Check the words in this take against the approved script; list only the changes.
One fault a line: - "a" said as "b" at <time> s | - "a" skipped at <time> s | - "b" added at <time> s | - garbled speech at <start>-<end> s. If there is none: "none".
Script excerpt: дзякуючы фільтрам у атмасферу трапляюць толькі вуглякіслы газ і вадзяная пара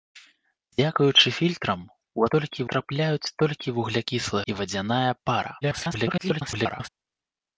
- "атмасферу" said as "толькі" at 2.4 s
- "газ" skipped at 4.4 s
- garbled speech at 5.6-6.9 s